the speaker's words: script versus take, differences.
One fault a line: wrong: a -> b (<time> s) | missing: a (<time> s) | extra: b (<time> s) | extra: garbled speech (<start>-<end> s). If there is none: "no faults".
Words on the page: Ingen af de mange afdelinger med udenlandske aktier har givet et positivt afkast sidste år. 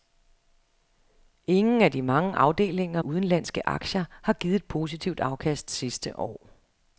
missing: med (3.0 s)